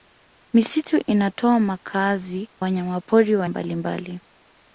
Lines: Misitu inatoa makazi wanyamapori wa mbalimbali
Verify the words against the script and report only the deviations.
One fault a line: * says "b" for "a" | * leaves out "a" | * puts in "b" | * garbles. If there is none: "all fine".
all fine